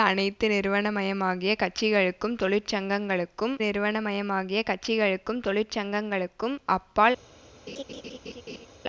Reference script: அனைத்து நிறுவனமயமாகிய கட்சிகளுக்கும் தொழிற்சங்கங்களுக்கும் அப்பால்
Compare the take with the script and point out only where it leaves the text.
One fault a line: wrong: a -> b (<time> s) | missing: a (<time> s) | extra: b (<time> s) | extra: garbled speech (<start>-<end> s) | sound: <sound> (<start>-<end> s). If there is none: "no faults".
extra: நிறுவனமயமாகிய கட்சிகளுக்கும் தொழிற்சங்கங்களுக்கும் (3.6 s)
sound: laugh (7.7-8.7 s)